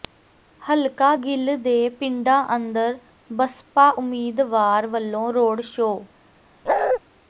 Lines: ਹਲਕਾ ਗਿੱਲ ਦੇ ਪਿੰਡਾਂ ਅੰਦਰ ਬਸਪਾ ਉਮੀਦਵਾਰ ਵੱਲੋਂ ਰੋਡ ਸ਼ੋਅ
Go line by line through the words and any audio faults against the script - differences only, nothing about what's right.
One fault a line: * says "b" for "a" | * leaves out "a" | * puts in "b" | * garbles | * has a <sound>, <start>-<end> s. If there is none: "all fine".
* has a bark, 6.7-7.0 s